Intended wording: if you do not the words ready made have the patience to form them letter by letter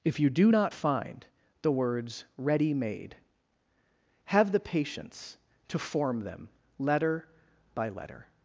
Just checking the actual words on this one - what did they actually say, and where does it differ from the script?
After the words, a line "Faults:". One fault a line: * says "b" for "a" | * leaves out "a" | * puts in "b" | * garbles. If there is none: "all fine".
if you do not find the words ready made have the patience to form them letter by letter
Faults:
* puts in "find"